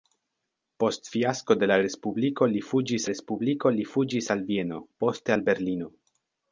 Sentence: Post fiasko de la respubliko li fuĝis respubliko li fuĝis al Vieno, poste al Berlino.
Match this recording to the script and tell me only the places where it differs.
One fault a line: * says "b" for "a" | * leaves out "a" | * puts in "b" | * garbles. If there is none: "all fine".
all fine